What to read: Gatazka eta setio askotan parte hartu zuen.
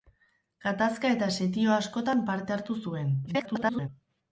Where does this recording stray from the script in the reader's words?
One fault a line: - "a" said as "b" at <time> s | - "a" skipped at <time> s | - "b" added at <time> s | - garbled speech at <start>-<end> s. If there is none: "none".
- garbled speech at 3.3-3.9 s